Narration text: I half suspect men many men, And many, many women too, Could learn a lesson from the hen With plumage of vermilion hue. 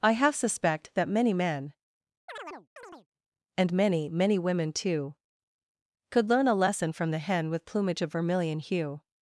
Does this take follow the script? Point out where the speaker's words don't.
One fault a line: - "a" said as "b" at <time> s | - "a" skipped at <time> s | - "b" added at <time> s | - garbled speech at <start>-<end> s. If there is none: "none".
- "men" said as "that" at 0.9 s